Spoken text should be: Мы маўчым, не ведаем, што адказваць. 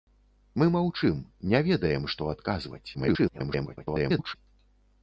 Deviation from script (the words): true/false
true